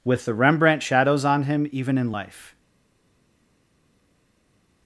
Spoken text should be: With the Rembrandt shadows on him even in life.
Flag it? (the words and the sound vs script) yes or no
no